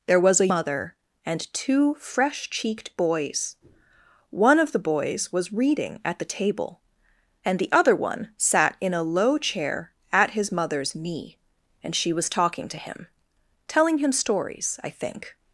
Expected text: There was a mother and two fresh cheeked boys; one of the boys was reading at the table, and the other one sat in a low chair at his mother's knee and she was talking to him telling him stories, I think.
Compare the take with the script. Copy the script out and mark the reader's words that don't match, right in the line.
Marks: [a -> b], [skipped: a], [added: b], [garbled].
There was a mother and two fresh cheeked boys; one of the boys was reading at the table, and the other one sat in a low chair at his mother's knee and she was talking to him telling him stories, I think.